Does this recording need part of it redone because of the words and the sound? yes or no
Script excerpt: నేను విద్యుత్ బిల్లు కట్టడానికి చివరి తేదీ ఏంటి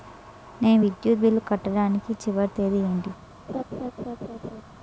yes